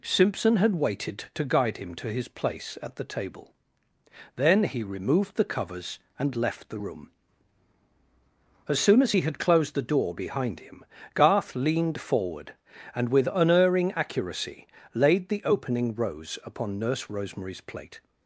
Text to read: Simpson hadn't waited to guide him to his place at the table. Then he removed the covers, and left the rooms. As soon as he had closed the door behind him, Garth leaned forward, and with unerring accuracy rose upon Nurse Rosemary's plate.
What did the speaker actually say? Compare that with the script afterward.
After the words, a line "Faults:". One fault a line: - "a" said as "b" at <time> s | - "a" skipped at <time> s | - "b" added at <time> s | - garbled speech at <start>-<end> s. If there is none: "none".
Simpson had waited to guide him to his place at the table. Then he removed the covers, and left the room. As soon as he had closed the door behind him, Garth leaned forward, and with unerring accuracy laid the opening rose upon Nurse Rosemary's plate.
Faults:
- "hadn't" said as "had" at 0.6 s
- "rooms" said as "room" at 6.7 s
- "laid the opening" added at 14.9 s